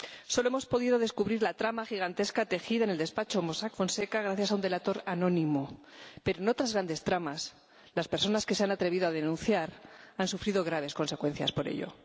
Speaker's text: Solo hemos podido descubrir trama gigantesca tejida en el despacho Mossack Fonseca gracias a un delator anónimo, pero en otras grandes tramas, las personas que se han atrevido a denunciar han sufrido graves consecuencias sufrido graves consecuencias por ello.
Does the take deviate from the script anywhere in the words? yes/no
yes